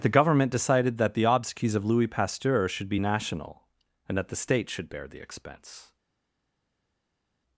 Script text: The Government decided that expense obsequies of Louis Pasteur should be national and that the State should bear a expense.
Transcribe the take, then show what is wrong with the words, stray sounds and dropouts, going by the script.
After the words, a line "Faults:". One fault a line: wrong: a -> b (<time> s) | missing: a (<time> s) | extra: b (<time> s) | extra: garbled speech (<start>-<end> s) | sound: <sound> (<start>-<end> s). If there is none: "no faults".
The Government decided that the obsequies of Louis Pasteur should be national and that the State should bear the expense.
Faults:
wrong: expense -> the (1.1 s)
wrong: a -> the (5.1 s)